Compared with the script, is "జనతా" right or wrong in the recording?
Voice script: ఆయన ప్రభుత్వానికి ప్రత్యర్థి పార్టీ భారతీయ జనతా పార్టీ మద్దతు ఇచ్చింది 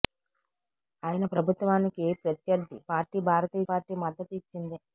wrong